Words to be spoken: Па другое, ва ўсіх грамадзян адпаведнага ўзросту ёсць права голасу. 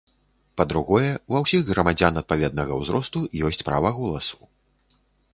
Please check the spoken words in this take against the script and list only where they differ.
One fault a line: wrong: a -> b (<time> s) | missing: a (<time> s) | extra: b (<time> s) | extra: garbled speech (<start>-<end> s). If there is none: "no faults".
no faults